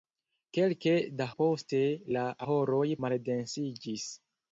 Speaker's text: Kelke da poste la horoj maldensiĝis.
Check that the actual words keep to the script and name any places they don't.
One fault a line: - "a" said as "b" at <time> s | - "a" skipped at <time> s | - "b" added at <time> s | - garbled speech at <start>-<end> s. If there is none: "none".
none